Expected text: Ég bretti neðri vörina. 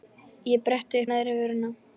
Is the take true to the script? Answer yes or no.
yes